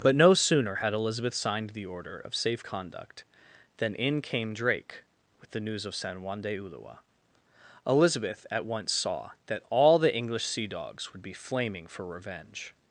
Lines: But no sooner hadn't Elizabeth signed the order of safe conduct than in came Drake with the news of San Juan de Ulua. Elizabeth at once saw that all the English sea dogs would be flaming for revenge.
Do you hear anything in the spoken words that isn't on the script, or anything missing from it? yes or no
yes